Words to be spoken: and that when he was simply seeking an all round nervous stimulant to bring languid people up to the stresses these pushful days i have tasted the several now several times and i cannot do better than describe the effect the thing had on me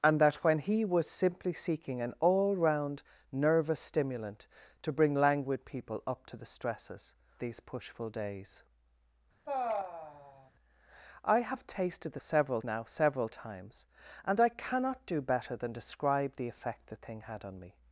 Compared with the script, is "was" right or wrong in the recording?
right